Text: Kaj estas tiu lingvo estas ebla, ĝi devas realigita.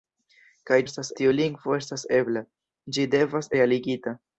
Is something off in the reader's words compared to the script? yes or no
no